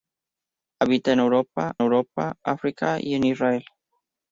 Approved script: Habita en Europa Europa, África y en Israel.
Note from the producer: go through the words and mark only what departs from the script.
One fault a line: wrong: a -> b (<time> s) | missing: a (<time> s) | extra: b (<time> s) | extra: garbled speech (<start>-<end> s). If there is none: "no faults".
no faults